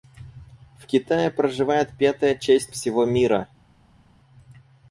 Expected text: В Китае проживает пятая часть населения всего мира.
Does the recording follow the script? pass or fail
fail